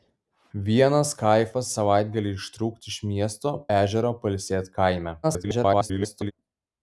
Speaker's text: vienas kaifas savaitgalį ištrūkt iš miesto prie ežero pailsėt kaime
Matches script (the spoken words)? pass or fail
fail